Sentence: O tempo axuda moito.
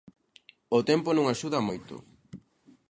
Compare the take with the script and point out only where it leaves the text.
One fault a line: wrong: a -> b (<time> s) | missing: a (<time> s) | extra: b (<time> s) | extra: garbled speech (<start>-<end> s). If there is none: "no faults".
extra: non (1.1 s)